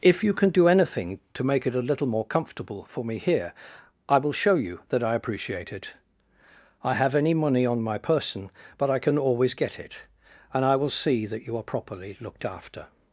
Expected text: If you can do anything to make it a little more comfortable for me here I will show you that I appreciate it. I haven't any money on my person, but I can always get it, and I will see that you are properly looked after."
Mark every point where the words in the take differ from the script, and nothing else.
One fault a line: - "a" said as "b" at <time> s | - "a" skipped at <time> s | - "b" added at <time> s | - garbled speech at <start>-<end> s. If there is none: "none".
- "haven't" said as "have" at 7.0 s